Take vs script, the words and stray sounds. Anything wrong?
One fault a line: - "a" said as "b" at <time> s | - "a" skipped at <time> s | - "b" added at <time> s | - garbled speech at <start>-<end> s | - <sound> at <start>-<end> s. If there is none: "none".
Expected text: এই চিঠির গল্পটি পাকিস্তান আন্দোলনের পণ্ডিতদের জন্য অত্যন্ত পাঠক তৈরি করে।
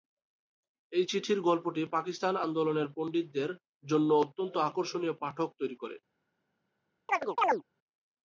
- "আকর্ষণীয়" added at 4.7 s
- chirp at 7.1-7.6 s